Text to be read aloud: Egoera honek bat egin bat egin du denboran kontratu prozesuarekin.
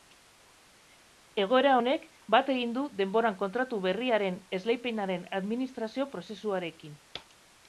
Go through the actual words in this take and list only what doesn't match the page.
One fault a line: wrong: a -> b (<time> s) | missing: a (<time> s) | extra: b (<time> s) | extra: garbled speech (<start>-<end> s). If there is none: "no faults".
missing: bat egin (2.7 s)
extra: berriaren esleipenaren administrazio (3.9 s)